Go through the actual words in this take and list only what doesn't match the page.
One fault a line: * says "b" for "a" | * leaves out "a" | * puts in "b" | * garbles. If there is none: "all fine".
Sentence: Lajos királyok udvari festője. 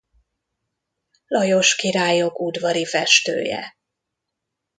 all fine